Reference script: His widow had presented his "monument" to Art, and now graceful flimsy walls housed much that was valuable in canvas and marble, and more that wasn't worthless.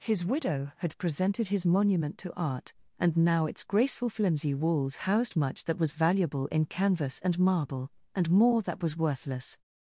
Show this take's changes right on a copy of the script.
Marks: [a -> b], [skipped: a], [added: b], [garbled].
His widow had presented his "monument" to Art, and now [added: its] graceful flimsy walls housed much that was valuable in canvas and marble, and more that [wasn't -> was] worthless.